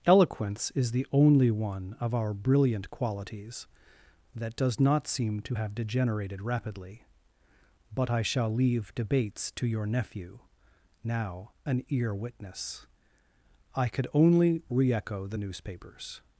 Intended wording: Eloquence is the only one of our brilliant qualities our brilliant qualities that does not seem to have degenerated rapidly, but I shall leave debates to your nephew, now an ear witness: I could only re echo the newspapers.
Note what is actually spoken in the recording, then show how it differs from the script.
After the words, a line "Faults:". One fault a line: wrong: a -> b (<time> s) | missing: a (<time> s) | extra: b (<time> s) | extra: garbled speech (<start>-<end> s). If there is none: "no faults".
Eloquence is the only one of our brilliant qualities that does not seem to have degenerated rapidly, but I shall leave debates to your nephew, now an ear witness: I could only re echo the newspapers.
Faults:
missing: our brilliant qualities (3.7 s)